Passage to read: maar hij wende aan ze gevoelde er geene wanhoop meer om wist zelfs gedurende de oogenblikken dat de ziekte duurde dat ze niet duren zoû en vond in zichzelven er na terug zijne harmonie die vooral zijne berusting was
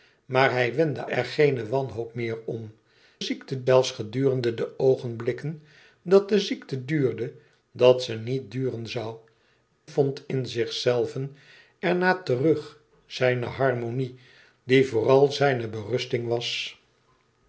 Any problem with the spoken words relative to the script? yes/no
yes